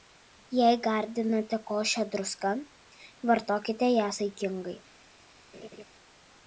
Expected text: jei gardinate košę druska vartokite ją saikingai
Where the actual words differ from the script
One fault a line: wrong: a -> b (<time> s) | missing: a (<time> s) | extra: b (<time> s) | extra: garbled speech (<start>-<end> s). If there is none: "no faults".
no faults